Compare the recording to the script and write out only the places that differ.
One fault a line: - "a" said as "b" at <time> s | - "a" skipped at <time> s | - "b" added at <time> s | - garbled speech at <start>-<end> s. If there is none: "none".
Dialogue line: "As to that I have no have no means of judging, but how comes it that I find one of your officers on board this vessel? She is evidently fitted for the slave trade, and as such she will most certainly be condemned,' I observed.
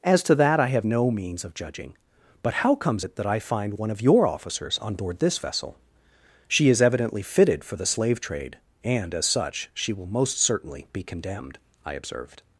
- "have no" skipped at 1.1 s